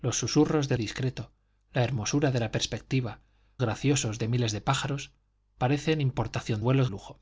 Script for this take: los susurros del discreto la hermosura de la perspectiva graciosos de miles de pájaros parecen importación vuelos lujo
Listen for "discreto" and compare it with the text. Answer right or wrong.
right